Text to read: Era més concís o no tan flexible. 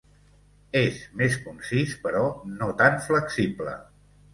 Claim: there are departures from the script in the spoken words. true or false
true